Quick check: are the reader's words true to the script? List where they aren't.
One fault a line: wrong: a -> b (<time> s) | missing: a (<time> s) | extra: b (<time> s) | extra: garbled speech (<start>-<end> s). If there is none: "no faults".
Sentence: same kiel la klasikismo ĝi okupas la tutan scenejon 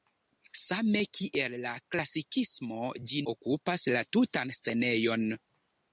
no faults